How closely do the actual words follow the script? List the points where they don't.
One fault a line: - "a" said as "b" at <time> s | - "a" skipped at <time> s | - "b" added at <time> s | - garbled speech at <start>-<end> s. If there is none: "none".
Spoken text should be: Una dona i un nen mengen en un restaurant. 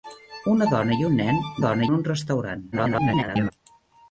- "mengen" said as "dona" at 1.6 s
- garbled speech at 2.7-3.5 s